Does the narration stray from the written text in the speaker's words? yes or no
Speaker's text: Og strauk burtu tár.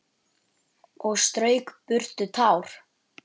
no